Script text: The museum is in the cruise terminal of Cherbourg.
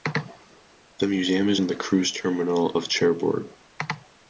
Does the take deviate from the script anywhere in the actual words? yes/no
no